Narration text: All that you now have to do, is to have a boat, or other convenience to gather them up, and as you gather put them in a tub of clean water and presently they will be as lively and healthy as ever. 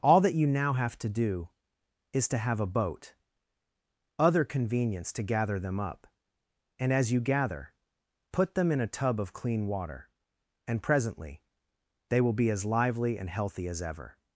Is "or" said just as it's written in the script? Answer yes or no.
no